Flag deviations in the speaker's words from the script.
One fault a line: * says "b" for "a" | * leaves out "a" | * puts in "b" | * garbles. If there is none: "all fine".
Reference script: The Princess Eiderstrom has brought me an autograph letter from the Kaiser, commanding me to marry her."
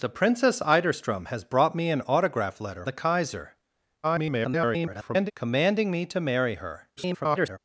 * leaves out "from"
* garbles
* garbles